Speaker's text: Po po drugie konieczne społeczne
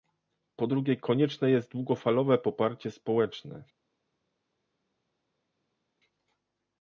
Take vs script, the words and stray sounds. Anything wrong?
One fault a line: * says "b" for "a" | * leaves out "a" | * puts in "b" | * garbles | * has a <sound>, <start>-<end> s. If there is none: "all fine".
* leaves out "po"
* puts in "jest długofalowe poparcie"